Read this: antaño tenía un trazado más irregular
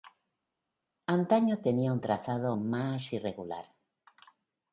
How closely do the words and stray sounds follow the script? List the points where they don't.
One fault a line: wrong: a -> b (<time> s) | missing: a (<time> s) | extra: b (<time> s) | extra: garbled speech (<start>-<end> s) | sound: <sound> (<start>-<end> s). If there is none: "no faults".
no faults